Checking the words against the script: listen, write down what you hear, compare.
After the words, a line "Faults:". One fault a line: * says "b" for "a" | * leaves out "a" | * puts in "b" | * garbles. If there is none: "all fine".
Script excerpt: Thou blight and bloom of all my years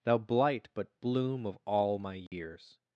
Thou blight but bloom of all my years
Faults:
* says "but" for "and"